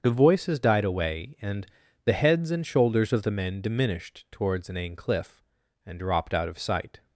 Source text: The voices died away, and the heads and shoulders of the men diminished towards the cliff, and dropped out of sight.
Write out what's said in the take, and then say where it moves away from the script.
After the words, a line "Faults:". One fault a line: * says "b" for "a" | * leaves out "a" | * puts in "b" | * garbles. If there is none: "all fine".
The voices died away, and the heads and shoulders of the men diminished towards an cliff, and dropped out of sight.
Faults:
* says "an" for "the"